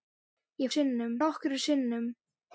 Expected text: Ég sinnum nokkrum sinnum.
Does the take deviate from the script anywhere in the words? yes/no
no